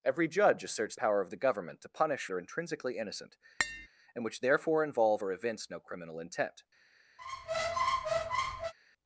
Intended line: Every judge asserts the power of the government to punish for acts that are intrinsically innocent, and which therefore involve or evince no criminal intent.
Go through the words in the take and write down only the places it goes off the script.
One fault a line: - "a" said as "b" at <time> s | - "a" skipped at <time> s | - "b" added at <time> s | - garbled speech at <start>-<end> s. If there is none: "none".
- "the" skipped at 0.9 s
- "for acts that" skipped at 2.3 s